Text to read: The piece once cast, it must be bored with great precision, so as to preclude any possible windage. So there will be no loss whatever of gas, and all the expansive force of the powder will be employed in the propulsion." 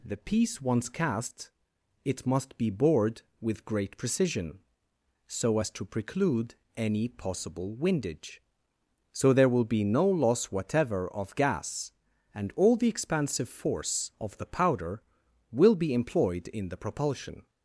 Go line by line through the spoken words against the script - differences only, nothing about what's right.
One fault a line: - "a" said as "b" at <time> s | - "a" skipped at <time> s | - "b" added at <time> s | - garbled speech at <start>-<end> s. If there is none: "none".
none